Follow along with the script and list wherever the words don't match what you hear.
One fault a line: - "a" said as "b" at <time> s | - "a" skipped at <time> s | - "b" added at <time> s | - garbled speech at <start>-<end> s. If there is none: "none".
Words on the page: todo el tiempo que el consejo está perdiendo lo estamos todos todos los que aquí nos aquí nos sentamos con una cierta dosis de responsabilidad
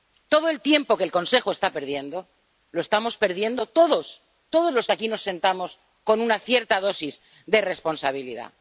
- "perdiendo" added at 3.2 s
- "aquí nos" skipped at 5.2 s